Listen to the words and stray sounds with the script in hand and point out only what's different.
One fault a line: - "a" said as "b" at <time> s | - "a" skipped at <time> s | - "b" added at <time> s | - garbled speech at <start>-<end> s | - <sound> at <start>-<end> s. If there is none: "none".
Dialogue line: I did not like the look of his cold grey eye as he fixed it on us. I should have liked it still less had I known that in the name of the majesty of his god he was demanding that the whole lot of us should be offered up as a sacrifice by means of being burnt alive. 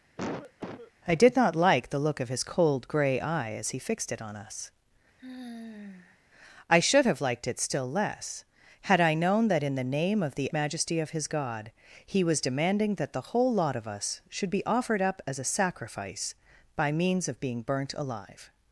- cough at 0.2-0.9 s
- sigh at 5.2-6.2 s